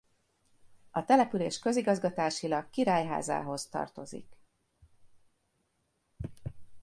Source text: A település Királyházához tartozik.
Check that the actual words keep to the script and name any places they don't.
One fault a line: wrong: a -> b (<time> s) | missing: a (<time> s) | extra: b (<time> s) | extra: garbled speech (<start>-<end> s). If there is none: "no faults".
extra: Közigazgatásilag (1.6 s)